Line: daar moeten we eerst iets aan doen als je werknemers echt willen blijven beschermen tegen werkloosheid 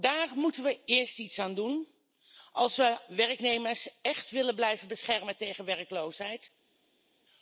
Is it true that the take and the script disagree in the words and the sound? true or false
true